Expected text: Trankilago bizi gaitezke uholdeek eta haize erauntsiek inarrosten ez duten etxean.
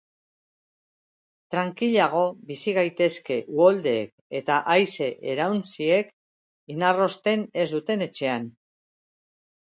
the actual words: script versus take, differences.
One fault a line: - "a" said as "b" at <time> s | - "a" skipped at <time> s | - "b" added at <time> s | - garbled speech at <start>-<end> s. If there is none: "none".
none